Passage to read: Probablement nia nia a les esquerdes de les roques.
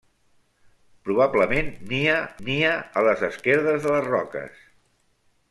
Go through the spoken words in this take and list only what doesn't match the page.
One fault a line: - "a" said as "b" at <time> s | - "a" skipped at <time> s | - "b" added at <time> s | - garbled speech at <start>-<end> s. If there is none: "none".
none